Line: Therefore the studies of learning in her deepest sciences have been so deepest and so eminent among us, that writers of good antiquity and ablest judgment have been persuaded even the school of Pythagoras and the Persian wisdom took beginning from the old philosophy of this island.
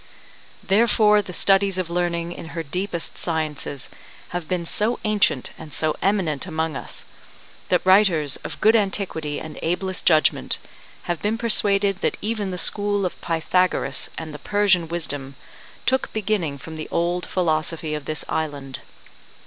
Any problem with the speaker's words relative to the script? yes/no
yes